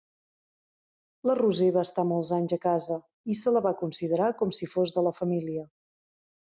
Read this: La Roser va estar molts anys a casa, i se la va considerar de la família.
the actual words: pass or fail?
fail